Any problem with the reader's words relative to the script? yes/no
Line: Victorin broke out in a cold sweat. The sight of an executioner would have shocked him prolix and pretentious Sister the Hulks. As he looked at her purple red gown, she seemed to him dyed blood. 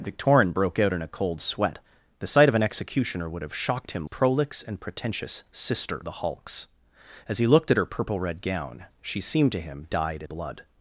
no